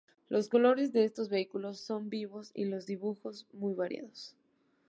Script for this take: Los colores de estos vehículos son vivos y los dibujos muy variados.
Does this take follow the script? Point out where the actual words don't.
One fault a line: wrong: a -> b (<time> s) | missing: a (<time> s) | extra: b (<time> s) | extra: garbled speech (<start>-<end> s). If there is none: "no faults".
no faults